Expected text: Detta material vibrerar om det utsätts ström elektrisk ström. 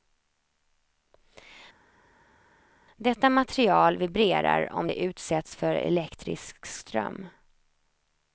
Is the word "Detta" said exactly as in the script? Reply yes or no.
yes